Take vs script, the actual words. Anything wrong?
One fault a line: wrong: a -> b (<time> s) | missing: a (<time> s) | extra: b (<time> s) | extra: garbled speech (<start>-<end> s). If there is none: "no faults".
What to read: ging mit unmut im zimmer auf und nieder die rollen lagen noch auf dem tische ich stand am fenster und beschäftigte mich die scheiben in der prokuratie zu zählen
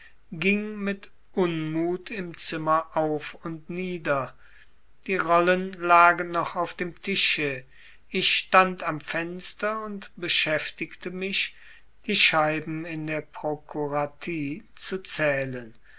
no faults